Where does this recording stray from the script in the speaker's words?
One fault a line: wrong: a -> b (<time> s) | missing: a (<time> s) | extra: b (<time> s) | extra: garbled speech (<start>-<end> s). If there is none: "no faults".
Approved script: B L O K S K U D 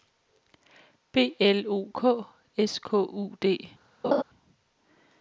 no faults